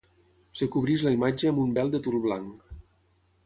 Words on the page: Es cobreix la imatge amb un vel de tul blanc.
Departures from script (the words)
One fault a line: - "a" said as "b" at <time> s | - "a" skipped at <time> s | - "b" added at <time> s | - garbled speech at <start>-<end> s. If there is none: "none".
none